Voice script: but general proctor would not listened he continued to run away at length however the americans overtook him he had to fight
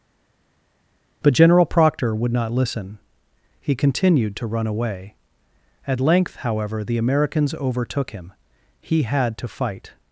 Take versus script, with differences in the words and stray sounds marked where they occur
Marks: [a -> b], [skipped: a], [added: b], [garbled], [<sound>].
but general proctor would not [listened -> listen] he continued to run away at length however the americans overtook him he had to fight